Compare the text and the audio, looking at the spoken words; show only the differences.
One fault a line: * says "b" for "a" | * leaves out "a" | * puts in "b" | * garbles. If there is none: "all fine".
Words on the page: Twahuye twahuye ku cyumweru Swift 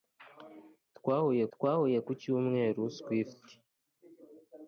all fine